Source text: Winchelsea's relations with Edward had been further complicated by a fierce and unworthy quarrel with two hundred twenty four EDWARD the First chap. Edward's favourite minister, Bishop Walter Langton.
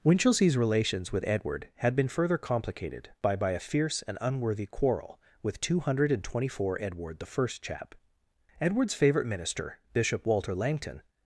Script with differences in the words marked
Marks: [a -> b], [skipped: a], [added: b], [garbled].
Winchelsea's relations with Edward had been further complicated by [added: by] a fierce and unworthy quarrel with two hundred twenty four EDWARD the First chap. Edward's favourite minister, Bishop Walter Langton.